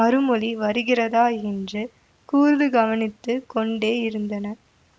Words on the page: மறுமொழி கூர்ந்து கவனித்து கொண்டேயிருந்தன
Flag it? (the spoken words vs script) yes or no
yes